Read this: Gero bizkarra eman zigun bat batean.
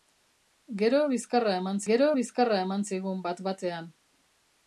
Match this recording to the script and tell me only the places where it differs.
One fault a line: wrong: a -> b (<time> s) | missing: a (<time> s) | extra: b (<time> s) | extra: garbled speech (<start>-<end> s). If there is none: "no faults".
extra: gero bizkarra eman (1.9 s)